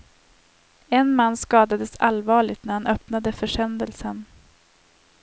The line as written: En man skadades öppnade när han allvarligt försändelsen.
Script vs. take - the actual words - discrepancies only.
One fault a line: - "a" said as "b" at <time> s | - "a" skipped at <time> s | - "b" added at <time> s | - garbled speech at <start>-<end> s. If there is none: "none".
- "öppnade" said as "allvarligt" at 2.0 s
- "allvarligt" said as "öppnade" at 2.9 s